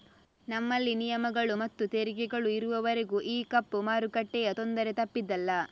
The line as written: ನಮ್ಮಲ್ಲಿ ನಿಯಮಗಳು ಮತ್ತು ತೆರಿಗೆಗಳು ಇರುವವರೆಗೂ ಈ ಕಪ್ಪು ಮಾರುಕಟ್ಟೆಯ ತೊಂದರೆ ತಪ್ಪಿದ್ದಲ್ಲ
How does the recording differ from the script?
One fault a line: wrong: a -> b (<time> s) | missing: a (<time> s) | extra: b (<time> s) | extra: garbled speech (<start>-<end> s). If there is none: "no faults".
no faults